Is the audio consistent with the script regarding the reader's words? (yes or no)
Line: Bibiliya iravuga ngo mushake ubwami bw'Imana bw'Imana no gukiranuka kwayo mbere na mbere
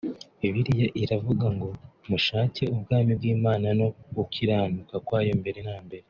no